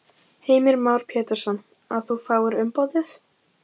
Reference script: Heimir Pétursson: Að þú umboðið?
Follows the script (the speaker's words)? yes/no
no